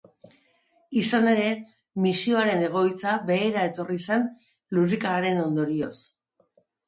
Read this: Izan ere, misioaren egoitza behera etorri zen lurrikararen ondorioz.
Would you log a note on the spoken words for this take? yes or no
no